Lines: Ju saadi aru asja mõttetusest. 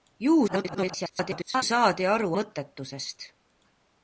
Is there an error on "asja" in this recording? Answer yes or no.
yes